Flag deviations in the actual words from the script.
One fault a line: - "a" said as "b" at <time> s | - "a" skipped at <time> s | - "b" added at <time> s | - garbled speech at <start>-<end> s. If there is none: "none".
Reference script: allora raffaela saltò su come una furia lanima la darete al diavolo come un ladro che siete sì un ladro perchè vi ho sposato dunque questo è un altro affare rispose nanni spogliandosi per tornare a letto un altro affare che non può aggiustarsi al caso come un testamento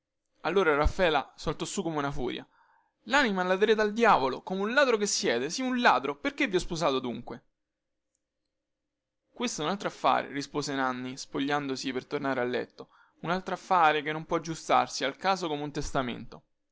none